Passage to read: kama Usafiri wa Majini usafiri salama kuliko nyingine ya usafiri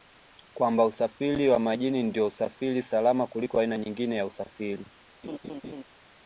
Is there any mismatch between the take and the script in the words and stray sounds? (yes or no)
yes